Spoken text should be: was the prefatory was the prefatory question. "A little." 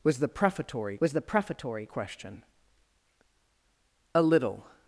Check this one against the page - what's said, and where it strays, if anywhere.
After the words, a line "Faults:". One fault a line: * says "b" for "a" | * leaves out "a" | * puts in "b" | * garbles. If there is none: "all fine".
was the prefatory was the prefatory question. "A little."
Faults:
all fine